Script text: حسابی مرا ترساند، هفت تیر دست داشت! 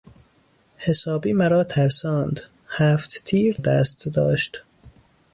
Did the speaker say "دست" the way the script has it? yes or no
yes